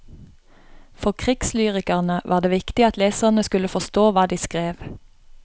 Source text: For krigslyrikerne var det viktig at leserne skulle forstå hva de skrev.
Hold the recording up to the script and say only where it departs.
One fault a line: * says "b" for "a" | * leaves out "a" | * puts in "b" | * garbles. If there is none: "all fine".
all fine